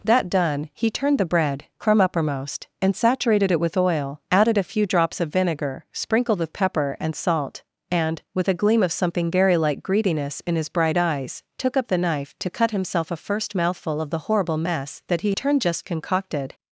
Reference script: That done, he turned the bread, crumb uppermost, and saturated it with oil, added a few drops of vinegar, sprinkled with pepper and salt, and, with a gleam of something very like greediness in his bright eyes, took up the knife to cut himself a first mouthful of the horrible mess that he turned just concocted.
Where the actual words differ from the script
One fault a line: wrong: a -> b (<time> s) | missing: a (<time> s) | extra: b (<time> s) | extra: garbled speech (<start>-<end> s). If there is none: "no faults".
no faults